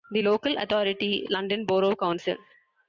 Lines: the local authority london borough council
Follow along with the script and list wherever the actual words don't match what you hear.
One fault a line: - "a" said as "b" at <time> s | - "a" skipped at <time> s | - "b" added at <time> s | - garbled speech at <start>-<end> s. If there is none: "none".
none